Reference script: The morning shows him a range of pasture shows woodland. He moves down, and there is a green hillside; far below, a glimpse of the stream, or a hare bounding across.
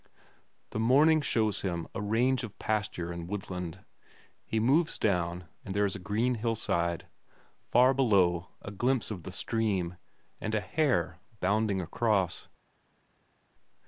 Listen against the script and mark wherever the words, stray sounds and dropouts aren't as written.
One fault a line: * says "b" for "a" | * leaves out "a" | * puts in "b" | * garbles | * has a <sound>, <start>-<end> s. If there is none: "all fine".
* says "and" for "shows"
* says "and" for "or"